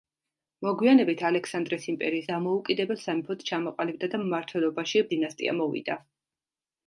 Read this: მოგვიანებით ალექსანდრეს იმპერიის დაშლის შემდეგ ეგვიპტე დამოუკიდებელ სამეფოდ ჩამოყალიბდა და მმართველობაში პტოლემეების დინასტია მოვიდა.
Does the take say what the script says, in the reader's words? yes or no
no